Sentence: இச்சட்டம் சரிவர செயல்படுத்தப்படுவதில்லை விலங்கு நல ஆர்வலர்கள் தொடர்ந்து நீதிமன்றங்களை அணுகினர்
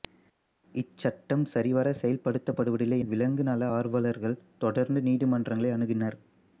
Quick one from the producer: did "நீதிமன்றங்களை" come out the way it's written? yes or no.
yes